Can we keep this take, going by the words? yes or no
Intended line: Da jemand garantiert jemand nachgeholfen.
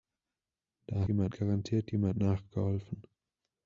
yes